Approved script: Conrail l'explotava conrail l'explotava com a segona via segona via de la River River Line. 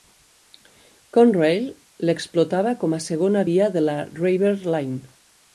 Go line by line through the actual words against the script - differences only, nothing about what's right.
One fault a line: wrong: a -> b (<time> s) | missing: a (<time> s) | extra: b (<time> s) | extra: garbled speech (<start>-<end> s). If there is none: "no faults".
missing: conrail l'explotava (2.7 s)
missing: segona via (3.7 s)
missing: River (4.6 s)